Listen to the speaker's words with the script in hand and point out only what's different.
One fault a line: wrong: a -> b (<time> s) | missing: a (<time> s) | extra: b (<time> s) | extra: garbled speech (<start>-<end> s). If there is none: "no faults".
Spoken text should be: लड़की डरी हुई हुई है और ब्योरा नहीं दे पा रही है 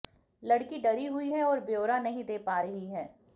missing: हुई (1.3 s)